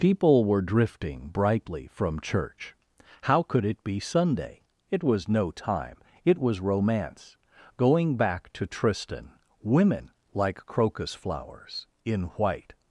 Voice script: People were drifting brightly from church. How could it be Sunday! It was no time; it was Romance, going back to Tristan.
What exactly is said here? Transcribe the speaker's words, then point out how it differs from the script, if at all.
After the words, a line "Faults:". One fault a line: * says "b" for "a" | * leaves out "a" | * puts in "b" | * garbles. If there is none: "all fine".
People were drifting brightly from church. How could it be Sunday! It was no time; it was Romance, going back to Tristan. Women, like crocus flowers, in white
Faults:
* puts in "Women like crocus flowers in white"